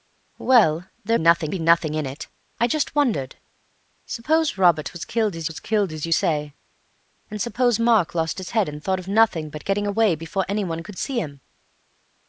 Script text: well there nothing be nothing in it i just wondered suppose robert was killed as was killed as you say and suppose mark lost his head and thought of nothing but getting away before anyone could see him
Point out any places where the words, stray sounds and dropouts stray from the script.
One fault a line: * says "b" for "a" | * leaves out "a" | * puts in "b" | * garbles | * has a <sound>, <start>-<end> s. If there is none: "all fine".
all fine